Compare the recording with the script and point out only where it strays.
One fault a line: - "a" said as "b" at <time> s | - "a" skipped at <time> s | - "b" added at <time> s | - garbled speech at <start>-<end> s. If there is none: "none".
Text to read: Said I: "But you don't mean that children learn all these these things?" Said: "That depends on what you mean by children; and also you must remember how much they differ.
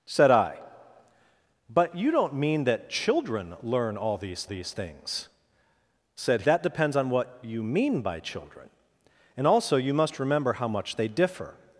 none